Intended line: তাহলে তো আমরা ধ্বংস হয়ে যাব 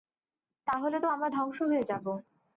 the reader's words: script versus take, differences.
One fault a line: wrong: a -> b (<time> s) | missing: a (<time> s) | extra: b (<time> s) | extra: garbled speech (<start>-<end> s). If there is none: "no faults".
no faults